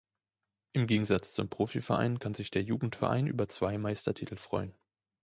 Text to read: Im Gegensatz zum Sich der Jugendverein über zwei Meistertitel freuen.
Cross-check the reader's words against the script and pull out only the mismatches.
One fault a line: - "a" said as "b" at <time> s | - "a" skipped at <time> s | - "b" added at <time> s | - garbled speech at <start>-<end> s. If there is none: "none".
- "Profiverein kann" added at 1.5 s